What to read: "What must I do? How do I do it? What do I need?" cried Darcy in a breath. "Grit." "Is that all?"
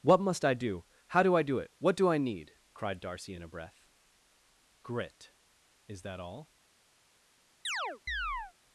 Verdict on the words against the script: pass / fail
pass